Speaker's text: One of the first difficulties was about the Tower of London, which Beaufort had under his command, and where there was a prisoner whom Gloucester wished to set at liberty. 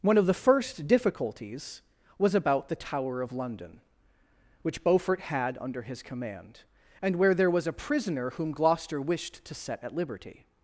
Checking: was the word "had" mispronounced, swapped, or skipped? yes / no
no